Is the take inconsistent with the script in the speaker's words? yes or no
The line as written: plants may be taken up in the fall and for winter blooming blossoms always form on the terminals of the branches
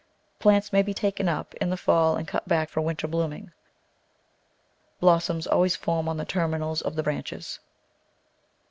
yes